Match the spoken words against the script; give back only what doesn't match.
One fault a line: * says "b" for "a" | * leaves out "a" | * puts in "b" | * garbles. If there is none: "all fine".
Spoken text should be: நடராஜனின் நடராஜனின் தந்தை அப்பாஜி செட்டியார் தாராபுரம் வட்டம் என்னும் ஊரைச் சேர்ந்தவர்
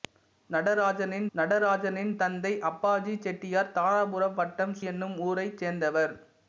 all fine